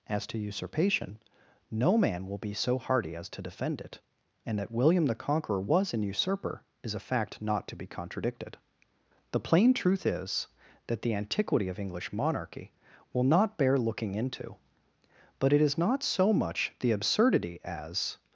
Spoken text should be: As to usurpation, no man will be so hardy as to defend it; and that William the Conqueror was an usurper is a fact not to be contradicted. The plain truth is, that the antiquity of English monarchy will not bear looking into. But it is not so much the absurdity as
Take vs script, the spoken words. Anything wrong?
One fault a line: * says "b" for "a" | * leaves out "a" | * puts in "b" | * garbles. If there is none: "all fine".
all fine